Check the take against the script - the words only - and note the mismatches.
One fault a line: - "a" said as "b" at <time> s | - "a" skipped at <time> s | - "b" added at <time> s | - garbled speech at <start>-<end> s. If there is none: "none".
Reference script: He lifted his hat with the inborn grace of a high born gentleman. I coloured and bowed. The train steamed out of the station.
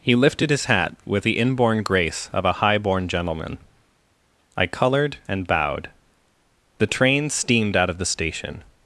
none